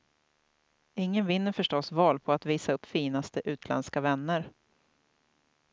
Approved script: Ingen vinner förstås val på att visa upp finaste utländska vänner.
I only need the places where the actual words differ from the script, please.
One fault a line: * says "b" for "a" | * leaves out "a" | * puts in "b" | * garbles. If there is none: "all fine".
all fine